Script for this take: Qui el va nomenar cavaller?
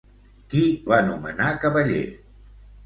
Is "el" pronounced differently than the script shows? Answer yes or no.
yes